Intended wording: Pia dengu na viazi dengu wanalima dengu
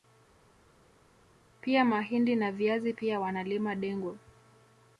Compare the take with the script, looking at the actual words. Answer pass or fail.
fail